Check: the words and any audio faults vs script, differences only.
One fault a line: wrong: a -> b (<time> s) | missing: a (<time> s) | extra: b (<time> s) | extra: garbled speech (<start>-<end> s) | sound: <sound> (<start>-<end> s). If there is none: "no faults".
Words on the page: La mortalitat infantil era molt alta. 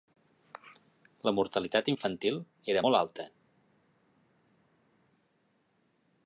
no faults